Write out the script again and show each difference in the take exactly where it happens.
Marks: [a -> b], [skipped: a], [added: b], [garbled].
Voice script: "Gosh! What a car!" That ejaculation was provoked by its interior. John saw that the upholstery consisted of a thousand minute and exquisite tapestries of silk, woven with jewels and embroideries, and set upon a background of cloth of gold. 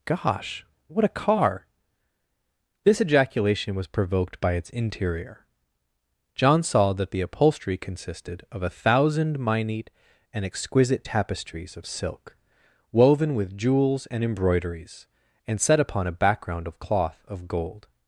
"Gosh! What a car!" [That -> This] ejaculation was provoked by its interior. John saw that the upholstery consisted of a thousand minute and exquisite tapestries of silk, woven with jewels and embroideries, and set upon a background of cloth of gold.